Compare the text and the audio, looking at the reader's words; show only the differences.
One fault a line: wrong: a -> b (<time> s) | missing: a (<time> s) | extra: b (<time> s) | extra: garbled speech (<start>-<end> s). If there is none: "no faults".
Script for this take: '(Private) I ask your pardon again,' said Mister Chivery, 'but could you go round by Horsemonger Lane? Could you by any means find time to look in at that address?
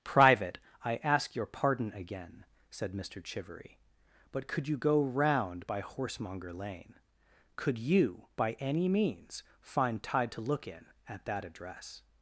wrong: time -> tide (10.0 s)